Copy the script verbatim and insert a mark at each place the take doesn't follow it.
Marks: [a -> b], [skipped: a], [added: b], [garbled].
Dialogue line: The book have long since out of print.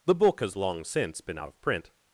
The book [have -> has] long since [added: been] out of print.